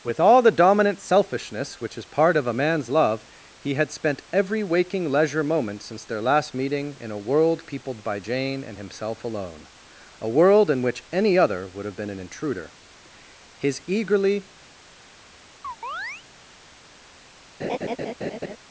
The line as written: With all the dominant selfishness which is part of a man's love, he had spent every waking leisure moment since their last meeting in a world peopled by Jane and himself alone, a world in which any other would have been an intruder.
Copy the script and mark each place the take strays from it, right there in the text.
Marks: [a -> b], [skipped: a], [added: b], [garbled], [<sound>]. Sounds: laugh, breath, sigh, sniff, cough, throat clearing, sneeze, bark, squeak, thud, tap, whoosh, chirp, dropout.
With all the dominant selfishness which is part of a man's love, he had spent every waking leisure moment since their last meeting in a world peopled by Jane and himself alone, a world in which any other would have been an intruder. [added: His eagerly] [chirp] [laugh]